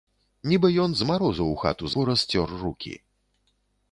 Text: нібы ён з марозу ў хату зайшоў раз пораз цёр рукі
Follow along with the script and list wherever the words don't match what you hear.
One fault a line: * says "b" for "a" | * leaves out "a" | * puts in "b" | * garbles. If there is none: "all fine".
* leaves out "зайшоў раз"